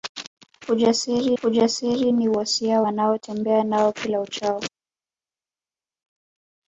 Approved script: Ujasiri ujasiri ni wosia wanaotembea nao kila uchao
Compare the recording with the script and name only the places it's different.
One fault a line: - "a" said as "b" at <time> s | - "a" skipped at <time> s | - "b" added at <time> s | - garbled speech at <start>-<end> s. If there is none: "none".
none